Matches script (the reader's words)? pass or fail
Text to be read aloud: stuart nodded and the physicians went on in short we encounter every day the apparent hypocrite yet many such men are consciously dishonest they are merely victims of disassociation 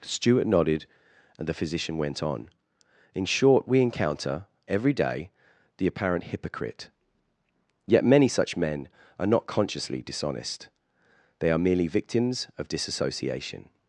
fail